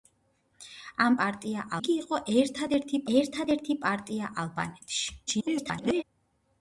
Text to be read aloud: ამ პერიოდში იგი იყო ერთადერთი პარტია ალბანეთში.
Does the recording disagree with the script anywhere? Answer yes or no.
yes